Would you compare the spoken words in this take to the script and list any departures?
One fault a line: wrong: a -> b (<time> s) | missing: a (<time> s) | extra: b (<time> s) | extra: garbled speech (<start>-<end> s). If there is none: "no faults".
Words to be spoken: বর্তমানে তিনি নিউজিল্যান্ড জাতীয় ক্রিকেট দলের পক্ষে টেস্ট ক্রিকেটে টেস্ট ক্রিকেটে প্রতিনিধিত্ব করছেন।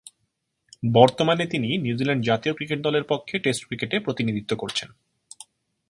missing: টেস্ট ক্রিকেটে (4.0 s)